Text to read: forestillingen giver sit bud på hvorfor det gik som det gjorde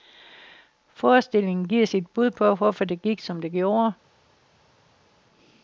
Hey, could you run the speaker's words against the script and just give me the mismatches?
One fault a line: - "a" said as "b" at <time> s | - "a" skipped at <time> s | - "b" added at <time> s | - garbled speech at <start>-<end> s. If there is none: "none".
none